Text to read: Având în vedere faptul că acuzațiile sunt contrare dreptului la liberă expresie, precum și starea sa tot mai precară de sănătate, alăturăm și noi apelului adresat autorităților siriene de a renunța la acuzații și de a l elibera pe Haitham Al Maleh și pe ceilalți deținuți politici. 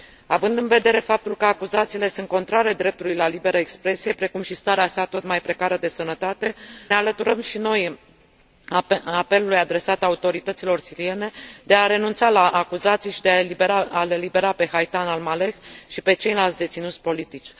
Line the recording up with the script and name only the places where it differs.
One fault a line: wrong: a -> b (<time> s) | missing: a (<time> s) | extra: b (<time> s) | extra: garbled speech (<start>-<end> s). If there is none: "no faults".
no faults